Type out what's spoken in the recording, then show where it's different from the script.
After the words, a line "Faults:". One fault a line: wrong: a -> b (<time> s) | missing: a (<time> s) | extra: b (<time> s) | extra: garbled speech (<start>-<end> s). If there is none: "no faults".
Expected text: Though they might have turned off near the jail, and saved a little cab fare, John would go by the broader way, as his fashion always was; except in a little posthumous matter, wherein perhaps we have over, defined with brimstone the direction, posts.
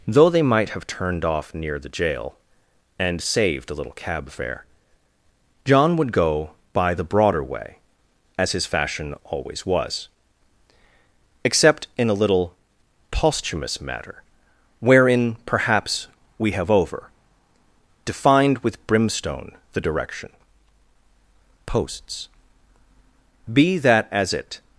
Though they might have turned off near the jail, and saved a little cab fare, John would go by the broader way, as his fashion always was; except in a little posthumous matter, wherein perhaps we have over, defined with brimstone the direction, posts. Be that as it
Faults:
extra: Be that as it (23.5 s)